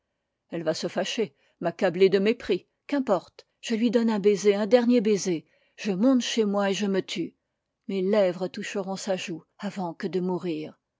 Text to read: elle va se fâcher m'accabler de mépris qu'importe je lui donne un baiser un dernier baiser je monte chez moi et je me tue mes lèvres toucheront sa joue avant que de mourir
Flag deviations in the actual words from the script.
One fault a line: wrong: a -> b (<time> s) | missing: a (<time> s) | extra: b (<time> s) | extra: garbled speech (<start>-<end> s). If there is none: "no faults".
no faults